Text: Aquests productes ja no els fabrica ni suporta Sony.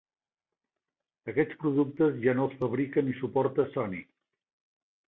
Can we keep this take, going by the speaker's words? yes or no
yes